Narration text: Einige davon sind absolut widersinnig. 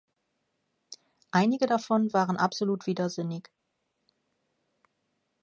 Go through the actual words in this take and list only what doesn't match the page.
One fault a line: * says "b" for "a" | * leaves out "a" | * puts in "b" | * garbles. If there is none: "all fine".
* says "waren" for "sind"